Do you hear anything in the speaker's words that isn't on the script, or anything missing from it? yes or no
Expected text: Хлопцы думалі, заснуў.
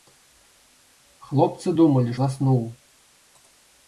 no